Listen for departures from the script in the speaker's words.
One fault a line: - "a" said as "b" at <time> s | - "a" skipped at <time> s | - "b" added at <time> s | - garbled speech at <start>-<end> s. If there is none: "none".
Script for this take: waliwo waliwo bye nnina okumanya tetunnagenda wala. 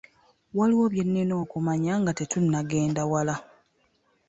- "waliwo" skipped at 0.8 s
- "nga" added at 2.0 s